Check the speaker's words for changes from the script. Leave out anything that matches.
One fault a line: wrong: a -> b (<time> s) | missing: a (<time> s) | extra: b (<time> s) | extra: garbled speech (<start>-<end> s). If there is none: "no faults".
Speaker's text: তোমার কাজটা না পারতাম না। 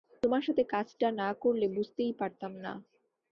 extra: সাথে (0.4 s)
extra: করলে বুঝতেই (1.4 s)